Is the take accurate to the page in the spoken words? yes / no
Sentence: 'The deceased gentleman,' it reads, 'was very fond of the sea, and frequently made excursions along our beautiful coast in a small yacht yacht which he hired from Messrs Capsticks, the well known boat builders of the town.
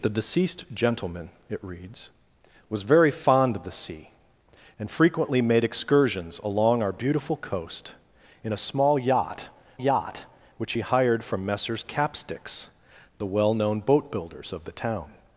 yes